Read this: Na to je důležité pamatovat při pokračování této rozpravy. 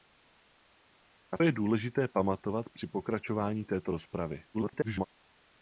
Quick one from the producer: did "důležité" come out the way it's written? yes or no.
yes